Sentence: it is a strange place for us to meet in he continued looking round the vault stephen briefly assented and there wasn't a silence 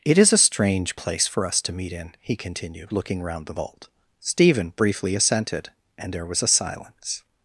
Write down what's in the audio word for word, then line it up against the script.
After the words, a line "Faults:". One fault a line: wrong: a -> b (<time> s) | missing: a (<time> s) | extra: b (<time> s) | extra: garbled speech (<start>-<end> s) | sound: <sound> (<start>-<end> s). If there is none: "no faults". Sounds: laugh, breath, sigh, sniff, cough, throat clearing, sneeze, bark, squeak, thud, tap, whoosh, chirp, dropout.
it is a strange place for us to meet in he continued looking round the vault stephen briefly assented and there was a silence
Faults:
wrong: wasn't -> was (6.3 s)